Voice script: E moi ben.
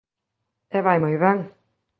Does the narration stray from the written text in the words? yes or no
yes